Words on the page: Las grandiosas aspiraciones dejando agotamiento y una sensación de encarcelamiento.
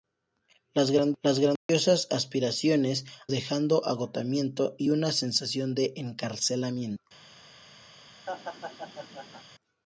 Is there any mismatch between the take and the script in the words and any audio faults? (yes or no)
yes